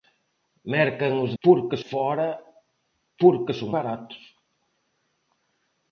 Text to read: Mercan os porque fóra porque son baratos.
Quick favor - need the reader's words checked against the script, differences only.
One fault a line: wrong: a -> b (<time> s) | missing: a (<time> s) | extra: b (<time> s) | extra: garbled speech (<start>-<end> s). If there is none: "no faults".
no faults